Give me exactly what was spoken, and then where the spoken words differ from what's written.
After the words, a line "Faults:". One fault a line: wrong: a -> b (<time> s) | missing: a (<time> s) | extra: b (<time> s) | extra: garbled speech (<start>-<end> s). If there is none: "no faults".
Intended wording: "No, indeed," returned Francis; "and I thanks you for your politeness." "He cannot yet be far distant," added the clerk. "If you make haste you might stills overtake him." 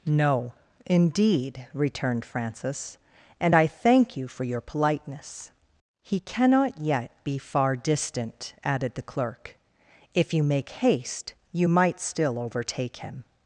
"No, indeed," returned Francis; "and I thank you for your politeness." "He cannot yet be far distant," added the clerk. "If you make haste you might still overtake him."
Faults:
wrong: thanks -> thank (3.7 s)
wrong: stills -> still (12.0 s)